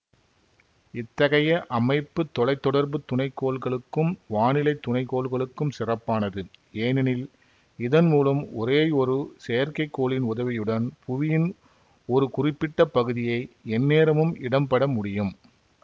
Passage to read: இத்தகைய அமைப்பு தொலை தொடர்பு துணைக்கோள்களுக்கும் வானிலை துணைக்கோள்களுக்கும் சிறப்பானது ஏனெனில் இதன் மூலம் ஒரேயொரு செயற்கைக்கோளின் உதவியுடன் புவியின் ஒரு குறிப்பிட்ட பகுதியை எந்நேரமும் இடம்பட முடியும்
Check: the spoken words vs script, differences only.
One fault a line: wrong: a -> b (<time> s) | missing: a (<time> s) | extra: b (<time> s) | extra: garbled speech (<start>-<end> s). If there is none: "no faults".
no faults